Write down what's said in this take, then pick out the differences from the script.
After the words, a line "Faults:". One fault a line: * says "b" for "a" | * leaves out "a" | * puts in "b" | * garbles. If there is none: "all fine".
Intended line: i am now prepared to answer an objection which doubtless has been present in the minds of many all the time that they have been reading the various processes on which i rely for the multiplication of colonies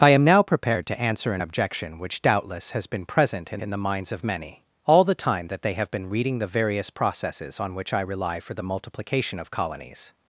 i am now prepared to answer an objection which doubtless has been present in in the minds of many all the time that they have been reading the various processes on which i rely for the multiplication of colonies
Faults:
* puts in "in"